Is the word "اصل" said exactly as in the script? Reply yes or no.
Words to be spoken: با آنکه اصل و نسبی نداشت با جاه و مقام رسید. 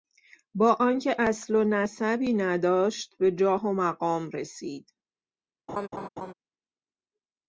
yes